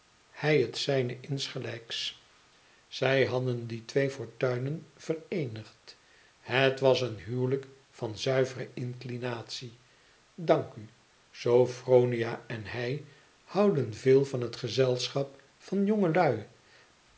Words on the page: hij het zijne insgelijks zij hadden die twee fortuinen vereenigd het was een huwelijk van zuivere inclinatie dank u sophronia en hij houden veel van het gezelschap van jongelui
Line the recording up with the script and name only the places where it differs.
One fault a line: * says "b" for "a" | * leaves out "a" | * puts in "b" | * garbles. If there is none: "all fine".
all fine